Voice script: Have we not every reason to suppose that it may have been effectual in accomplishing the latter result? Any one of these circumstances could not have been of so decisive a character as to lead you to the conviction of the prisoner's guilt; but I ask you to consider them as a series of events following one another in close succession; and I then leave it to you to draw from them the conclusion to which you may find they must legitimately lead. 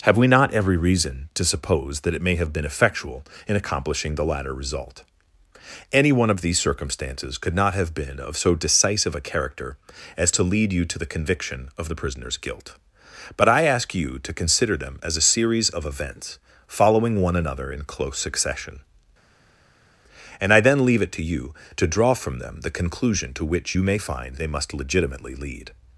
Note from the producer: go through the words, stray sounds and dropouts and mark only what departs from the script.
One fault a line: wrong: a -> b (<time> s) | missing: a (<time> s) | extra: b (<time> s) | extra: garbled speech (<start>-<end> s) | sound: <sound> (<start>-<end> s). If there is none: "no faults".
no faults